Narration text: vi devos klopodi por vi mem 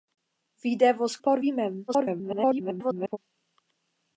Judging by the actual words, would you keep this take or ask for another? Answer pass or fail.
fail